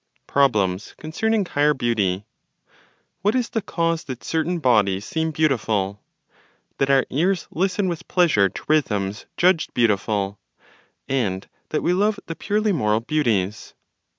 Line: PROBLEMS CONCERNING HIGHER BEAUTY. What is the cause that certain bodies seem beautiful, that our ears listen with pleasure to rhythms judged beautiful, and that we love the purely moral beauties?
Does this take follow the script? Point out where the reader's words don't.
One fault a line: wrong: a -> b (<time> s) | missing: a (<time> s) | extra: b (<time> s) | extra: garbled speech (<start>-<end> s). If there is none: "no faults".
no faults